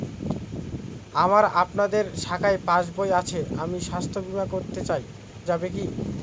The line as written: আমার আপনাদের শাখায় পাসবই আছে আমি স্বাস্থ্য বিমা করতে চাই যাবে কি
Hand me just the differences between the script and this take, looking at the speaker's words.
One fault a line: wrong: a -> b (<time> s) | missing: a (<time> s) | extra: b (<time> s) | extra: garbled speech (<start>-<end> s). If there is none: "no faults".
no faults